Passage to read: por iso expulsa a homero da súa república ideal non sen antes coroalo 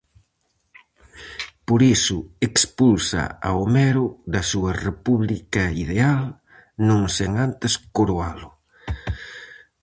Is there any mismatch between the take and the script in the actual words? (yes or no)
no